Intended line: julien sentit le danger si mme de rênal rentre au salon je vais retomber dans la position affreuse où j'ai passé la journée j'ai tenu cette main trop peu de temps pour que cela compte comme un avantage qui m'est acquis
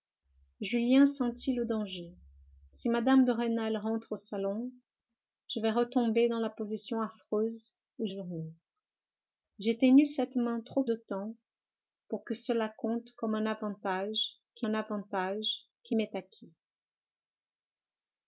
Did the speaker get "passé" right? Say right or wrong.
wrong